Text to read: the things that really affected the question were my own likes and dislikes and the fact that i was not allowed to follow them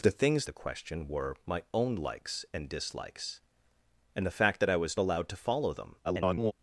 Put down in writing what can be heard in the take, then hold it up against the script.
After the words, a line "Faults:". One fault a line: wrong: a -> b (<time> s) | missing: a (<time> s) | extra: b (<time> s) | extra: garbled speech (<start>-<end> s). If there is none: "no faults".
the things the question were my own likes and dislikes and the fact that i was allowed to follow them [garbled]
Faults:
missing: that really affected (0.5 s)
missing: not (5.0 s)
extra: garbled speech (6.0-6.5 s)